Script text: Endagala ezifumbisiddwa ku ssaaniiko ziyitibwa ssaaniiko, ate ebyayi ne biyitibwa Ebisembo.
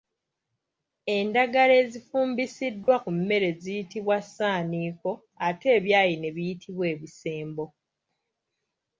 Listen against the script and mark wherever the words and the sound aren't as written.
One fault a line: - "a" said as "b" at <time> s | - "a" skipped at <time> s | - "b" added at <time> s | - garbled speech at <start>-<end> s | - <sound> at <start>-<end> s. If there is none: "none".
- dropout at 2.8-2.9 s
- "ssaaniiko" said as "mmere" at 3.2 s